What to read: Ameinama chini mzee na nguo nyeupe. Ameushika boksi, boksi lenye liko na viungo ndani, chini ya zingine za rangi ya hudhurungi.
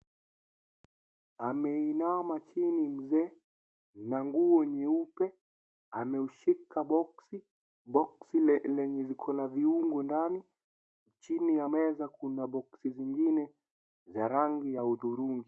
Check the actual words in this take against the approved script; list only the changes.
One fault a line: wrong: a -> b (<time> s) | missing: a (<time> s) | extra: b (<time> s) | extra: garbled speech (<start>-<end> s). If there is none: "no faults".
extra: meza kuna boksi (11.7 s)